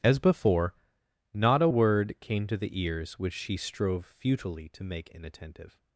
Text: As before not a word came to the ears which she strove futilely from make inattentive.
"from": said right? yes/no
no